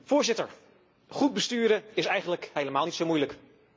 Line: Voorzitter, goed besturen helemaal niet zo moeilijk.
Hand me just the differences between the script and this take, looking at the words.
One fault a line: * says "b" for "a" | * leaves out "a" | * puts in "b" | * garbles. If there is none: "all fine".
* puts in "is eigenlijk"